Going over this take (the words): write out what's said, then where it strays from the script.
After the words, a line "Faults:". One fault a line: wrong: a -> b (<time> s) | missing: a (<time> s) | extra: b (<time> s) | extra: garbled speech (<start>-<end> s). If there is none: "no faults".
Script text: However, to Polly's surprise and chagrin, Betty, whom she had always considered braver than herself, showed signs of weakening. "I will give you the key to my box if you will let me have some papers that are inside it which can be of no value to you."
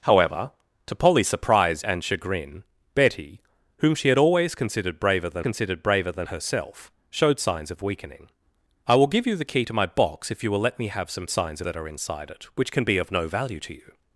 However, to Polly's surprise and chagrin, Betty, whom she had always considered braver than considered braver than herself, showed signs of weakening. "I will give you the key to my box if you will let me have some signs that are inside it which can be of no value to you."
Faults:
extra: considered braver than (5.4 s)
wrong: papers -> signs (11.3 s)